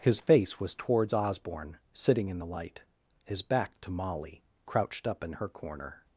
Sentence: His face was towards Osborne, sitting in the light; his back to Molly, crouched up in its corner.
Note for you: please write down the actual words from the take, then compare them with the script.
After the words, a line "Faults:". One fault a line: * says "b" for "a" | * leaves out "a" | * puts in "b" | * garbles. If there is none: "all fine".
His face was towards Osborne, sitting in the light; his back to Molly, crouched up in her corner.
Faults:
* says "her" for "its"